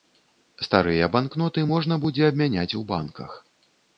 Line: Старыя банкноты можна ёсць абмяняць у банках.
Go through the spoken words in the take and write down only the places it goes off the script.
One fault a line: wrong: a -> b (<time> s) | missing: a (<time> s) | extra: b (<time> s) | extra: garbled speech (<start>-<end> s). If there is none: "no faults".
wrong: ёсць -> будзе (2.1 s)